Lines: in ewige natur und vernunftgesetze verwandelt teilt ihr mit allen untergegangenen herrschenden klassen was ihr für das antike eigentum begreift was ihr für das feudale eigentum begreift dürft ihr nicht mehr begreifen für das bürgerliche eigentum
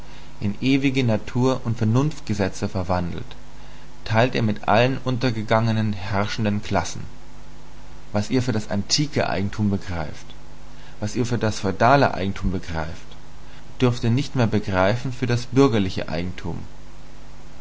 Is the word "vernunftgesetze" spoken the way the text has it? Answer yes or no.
yes